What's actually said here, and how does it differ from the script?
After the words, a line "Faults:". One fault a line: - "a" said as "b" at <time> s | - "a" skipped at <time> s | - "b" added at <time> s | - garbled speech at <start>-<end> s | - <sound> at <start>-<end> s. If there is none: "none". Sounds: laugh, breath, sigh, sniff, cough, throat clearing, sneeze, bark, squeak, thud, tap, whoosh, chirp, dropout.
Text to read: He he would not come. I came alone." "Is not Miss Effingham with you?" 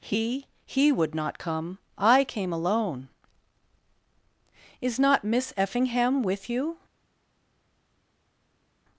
He he would not come. I came alone." "Is not Miss Effingham with you?"
Faults:
none